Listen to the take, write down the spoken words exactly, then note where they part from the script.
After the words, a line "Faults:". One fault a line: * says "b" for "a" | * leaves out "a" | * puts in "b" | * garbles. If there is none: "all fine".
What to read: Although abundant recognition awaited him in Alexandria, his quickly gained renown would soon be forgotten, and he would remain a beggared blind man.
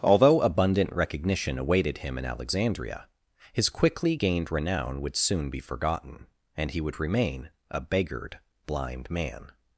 Although abundant recognition awaited him in Alexandria, his quickly gained renown would soon be forgotten, and he would remain a beggared blind man.
Faults:
all fine